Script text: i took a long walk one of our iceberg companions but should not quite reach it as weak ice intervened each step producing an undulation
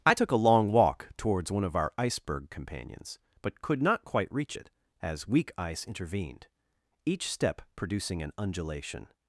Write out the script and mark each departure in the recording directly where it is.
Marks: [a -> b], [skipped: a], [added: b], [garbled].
i took a long walk [added: towards] one of our iceberg companions but [should -> could] not quite reach it as weak ice intervened each step producing an undulation